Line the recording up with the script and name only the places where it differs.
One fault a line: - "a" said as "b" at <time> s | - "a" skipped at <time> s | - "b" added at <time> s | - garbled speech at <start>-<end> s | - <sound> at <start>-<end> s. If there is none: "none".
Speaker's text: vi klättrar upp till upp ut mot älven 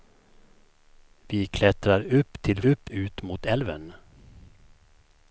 none